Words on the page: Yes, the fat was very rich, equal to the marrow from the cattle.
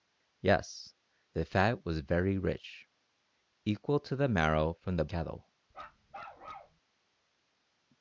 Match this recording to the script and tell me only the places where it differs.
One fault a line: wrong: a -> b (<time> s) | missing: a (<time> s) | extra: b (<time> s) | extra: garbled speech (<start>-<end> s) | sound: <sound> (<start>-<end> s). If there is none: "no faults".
sound: bark (5.7-6.8 s)